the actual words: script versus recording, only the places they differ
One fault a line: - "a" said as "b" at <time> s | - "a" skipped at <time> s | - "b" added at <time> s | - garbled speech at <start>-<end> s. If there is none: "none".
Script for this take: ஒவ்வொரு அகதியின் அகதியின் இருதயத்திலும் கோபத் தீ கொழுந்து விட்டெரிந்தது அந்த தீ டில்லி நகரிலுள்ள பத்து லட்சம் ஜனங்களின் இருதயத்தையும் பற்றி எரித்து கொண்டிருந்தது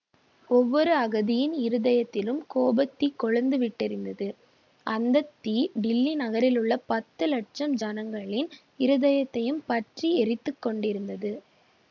- "அகதியின்" skipped at 1.5 s